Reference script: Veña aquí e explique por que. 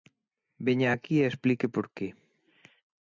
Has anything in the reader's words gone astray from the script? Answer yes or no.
no